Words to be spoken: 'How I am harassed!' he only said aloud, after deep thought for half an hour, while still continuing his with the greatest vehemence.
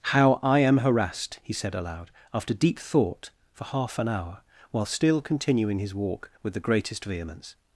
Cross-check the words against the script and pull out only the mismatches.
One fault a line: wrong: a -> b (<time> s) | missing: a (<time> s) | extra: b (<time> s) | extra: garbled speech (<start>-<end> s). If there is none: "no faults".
missing: only (1.5 s)
extra: walk (5.9 s)